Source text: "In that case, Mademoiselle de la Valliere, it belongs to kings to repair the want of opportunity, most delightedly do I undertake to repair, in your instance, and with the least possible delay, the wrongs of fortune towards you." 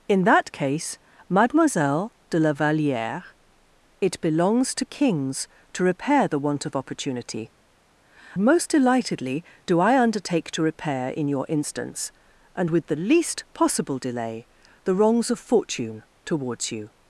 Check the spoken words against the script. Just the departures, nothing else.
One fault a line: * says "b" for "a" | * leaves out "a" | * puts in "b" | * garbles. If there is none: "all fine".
all fine